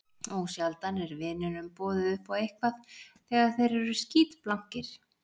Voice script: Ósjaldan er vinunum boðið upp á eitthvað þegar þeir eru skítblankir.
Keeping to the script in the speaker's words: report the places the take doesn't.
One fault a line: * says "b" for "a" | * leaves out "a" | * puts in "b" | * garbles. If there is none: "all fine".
all fine